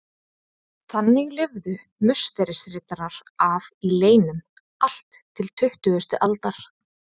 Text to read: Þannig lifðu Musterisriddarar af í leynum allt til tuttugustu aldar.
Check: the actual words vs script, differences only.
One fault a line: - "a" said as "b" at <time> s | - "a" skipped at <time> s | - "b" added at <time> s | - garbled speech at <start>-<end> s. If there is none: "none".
none